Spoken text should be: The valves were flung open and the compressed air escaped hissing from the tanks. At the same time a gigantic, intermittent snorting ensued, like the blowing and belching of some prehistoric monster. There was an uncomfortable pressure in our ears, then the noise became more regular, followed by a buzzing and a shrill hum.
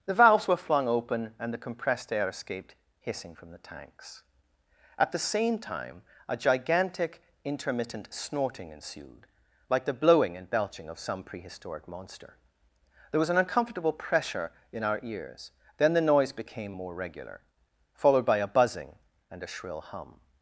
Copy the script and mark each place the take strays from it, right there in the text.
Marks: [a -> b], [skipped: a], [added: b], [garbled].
The valves were flung open and the compressed air escaped hissing from the tanks. At the same time a gigantic, intermittent snorting ensued, like the blowing and belching of some prehistoric monster. There was an uncomfortable pressure in our ears, then the noise became more regular, followed by a buzzing and a shrill hum.